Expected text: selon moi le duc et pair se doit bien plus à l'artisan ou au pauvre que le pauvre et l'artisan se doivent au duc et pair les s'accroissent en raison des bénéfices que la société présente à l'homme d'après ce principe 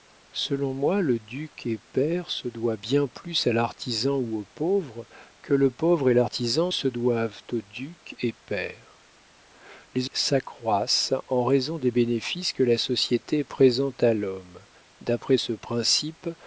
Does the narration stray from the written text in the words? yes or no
no